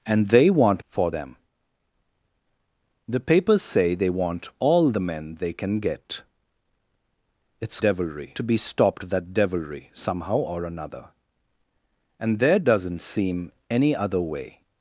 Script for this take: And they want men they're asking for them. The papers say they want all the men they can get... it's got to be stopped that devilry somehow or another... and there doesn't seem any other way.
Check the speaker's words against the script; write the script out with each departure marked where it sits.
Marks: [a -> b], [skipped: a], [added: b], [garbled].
And they want [skipped: men they're asking] for them. The papers say they want all the men they can get... it's [got -> devilry] to be stopped that devilry somehow or another... and there doesn't seem any other way.